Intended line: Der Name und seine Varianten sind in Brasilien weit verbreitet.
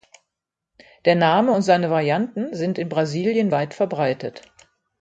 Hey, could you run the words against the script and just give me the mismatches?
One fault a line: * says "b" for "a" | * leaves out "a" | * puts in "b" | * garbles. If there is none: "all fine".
all fine